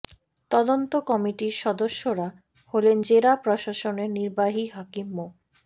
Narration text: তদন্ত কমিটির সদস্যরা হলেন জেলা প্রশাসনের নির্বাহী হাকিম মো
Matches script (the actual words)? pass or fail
pass